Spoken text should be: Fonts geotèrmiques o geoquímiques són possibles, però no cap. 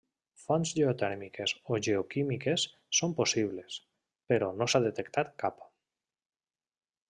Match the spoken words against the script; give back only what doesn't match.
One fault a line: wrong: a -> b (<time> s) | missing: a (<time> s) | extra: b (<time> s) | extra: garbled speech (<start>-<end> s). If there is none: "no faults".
extra: s'ha detectat (4.7 s)